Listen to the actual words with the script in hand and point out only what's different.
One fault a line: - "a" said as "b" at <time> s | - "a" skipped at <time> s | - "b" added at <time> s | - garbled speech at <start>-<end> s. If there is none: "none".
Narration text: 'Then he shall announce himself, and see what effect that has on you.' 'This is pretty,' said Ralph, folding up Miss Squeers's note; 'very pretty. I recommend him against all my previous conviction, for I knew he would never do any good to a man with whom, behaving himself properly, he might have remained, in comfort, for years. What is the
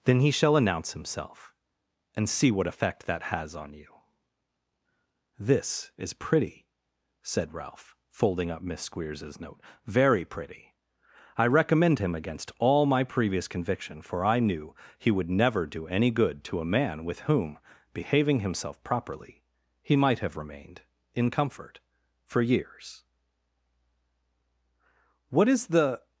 none